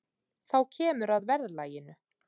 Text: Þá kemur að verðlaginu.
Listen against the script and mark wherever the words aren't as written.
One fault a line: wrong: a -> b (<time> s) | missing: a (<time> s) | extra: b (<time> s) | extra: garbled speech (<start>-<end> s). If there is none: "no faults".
no faults